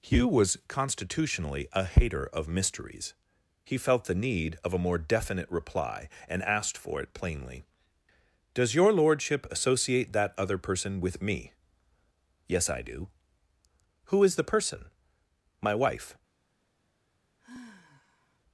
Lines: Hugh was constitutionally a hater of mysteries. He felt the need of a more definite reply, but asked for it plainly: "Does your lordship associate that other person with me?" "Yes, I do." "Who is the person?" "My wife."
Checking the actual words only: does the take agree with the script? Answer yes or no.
no